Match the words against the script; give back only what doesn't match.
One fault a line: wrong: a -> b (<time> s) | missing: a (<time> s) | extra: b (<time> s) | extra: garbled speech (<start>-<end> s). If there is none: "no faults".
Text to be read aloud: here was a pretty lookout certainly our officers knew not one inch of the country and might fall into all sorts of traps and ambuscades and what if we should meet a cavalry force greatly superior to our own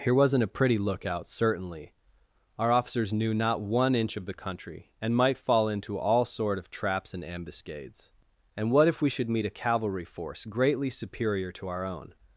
wrong: was -> wasn't (0.1 s)
wrong: sorts -> sort (6.2 s)